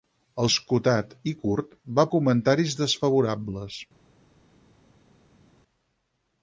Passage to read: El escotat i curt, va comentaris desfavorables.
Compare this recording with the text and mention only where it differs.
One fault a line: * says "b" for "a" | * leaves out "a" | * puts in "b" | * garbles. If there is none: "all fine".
all fine